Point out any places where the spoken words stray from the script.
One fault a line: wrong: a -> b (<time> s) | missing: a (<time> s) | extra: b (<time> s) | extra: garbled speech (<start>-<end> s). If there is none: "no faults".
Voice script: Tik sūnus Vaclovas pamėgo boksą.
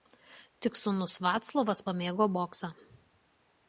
no faults